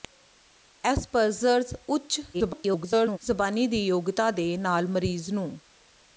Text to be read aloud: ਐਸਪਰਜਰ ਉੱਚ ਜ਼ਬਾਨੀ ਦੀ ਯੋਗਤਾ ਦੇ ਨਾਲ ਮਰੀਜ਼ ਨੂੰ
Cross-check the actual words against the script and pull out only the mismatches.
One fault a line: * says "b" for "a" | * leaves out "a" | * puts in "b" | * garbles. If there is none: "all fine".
* garbles